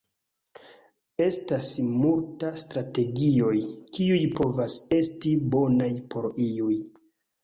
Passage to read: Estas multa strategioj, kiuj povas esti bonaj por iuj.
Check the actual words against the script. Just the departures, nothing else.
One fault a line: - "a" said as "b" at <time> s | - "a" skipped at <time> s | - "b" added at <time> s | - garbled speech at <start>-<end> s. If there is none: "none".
none